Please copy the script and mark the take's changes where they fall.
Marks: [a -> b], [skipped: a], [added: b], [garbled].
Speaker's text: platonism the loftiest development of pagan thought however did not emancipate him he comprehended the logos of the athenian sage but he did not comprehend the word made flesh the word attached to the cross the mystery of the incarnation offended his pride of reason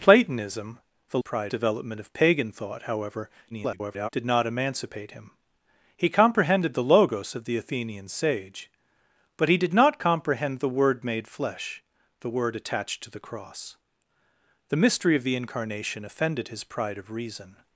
platonism the [loftiest -> pride] development of pagan thought however [garbled] did not emancipate him he comprehended the logos of the athenian sage but he did not comprehend the word made flesh the word attached to the cross the mystery of the incarnation offended his pride of reason